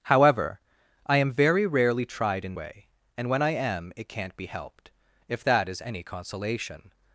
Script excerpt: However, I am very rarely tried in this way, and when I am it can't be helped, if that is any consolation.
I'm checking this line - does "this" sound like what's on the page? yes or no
no